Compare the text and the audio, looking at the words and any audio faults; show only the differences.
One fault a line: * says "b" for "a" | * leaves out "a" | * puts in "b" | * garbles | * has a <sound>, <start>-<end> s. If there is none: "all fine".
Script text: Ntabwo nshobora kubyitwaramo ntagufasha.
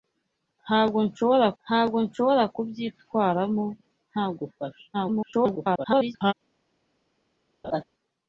* puts in "ntabwo nshobora"
* garbles
* has a laugh, 7.6-7.8 s